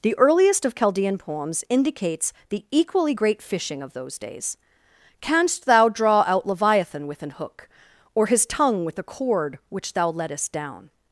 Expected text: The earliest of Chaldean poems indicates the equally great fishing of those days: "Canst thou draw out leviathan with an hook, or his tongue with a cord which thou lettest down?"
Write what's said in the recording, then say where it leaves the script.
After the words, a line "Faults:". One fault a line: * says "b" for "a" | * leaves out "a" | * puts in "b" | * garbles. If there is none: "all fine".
The earliest of Chaldean poems indicates the equally great fishing of those days: "Canst thou draw out leviathan with an hook, or his tongue with a cord which thou lettest down?"
Faults:
all fine